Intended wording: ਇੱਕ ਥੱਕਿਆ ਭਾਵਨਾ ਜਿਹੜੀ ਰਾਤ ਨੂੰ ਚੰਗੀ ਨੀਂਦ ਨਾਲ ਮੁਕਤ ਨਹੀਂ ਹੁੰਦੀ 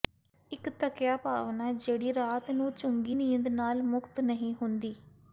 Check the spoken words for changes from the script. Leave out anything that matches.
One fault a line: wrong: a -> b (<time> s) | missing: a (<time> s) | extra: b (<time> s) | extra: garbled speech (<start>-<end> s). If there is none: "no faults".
no faults